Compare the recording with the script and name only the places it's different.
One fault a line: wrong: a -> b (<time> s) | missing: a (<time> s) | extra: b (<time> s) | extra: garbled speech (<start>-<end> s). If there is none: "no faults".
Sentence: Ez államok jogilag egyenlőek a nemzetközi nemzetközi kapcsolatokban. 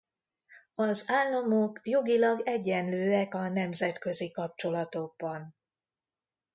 wrong: Ez -> Az (0.8 s)
missing: nemzetközi (4.3 s)